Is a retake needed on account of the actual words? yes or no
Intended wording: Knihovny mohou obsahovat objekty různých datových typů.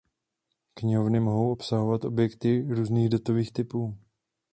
no